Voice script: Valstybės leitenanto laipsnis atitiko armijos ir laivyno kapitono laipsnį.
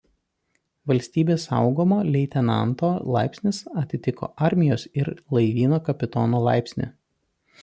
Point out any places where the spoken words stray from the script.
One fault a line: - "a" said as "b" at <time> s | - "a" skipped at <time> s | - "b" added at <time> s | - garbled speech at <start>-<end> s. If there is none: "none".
- "saugumo" added at 1.5 s